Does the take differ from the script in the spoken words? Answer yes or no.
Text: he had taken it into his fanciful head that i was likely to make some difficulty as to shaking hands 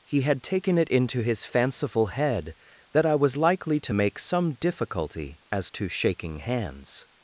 no